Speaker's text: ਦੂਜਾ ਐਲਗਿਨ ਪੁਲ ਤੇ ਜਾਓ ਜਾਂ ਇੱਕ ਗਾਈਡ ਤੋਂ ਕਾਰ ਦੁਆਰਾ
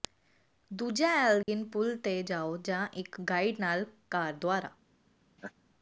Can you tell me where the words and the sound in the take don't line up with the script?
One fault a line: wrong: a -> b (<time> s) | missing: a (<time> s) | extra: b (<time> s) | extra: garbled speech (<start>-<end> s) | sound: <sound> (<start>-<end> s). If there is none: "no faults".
sound: dropout (1.4-1.5 s)
wrong: ਤੋਂ -> ਨਾਲ (3.6 s)
sound: laugh (5.4-5.5 s)